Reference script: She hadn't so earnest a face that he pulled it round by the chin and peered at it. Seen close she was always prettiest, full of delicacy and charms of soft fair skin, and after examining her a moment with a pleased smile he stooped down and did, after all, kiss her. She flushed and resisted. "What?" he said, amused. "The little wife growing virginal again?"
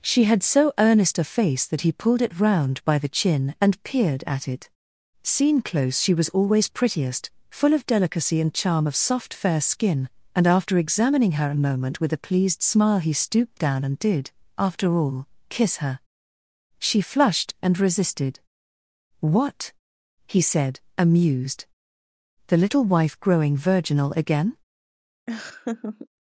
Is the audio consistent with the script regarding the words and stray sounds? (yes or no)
no